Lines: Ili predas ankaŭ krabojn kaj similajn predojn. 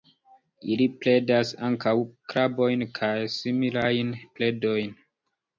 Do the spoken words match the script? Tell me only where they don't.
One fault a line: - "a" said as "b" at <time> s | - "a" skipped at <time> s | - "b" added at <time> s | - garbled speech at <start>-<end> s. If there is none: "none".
none